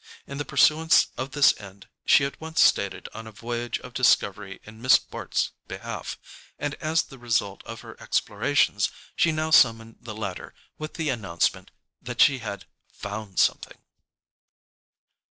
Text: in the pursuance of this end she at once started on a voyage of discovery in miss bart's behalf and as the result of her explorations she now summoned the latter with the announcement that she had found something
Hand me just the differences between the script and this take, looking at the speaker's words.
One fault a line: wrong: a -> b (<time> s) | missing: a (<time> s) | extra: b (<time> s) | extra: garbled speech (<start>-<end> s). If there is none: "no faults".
no faults